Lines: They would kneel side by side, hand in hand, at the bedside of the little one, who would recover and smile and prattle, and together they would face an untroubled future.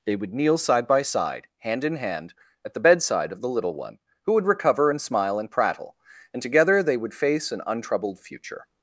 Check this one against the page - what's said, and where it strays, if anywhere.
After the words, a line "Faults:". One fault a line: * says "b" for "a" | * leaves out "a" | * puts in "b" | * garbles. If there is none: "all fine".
They would kneel side by side, hand in hand, at the bedside of the little one, who would recover and smile and prattle, and together they would face an untroubled future.
Faults:
all fine